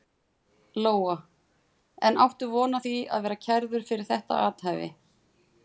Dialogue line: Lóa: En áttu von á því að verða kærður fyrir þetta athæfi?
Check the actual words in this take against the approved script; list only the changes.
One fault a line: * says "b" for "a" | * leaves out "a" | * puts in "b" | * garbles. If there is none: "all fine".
all fine